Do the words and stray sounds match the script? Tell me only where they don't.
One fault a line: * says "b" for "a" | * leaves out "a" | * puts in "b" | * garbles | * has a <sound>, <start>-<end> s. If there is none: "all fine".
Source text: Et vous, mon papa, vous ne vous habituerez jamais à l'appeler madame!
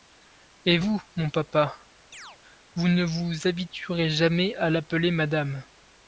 * has a chirp, 2.1-2.4 s